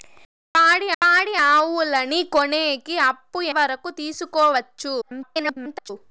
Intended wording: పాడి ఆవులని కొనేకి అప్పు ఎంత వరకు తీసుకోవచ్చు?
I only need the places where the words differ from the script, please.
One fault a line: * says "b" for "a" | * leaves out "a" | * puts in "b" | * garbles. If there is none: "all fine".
* puts in "పాడి"
* leaves out "ఎంత"
* garbles